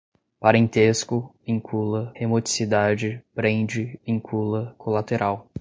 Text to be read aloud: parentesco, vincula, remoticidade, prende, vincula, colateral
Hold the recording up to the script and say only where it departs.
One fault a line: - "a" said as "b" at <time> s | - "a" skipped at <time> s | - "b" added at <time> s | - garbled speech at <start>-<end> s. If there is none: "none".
none